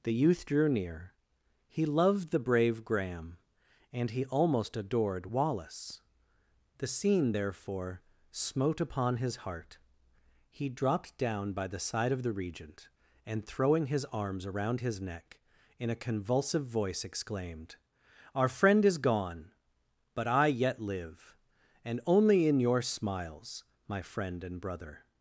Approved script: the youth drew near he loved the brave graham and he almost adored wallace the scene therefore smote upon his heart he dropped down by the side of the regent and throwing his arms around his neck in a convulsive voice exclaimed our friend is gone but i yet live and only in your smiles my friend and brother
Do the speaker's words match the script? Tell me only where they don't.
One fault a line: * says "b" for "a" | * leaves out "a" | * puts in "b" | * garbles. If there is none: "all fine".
all fine